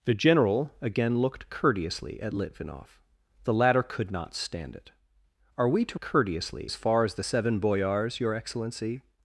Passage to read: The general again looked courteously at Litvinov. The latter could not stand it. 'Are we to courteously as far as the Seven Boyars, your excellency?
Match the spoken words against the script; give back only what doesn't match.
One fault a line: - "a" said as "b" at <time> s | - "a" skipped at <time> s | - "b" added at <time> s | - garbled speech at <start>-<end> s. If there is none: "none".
none